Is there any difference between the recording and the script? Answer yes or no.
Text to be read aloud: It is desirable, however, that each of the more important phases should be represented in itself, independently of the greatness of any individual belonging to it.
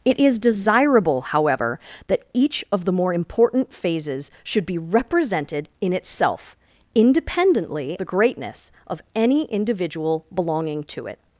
yes